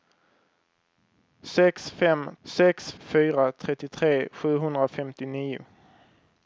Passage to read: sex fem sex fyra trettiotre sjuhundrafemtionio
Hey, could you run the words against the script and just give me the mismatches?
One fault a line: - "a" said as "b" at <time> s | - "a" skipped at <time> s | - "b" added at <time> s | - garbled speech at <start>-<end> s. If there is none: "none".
none